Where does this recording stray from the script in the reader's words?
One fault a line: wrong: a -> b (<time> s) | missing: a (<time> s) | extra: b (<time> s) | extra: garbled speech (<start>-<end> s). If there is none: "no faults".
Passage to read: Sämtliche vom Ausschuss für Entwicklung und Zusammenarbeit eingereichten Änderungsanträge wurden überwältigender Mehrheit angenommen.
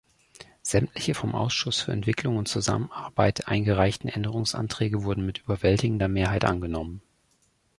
extra: mit (5.2 s)